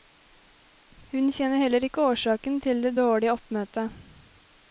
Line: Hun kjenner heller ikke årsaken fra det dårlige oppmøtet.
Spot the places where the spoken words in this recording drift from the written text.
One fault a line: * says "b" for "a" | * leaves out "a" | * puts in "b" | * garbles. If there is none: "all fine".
* says "til" for "fra"